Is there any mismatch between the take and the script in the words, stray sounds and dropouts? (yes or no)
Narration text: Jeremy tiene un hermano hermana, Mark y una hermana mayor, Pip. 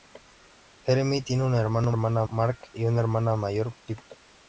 no